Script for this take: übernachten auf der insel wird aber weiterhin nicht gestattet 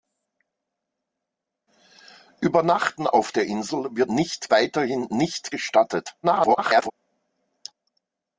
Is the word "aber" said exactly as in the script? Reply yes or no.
no